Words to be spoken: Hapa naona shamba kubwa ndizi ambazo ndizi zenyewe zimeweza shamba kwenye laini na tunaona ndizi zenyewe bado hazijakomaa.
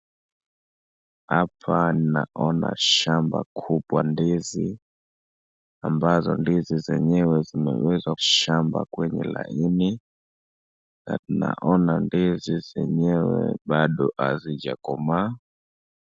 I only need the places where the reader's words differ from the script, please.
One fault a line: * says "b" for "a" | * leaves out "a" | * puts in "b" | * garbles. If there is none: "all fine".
all fine